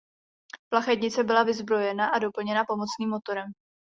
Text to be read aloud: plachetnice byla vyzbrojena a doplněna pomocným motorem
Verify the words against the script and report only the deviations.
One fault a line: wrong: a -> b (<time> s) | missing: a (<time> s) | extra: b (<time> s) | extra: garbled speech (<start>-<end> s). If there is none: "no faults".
no faults